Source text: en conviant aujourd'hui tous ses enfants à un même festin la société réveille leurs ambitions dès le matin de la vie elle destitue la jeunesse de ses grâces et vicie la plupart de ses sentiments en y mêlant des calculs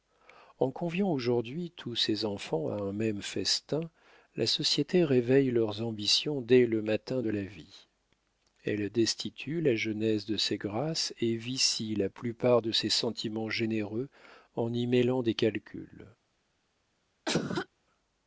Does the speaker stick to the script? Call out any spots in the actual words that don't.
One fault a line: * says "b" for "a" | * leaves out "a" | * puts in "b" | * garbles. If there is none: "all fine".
* puts in "généreux"